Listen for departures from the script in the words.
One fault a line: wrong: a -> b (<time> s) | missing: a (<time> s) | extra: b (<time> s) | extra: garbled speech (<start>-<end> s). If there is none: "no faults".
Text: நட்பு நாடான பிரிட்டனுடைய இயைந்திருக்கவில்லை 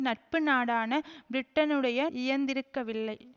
no faults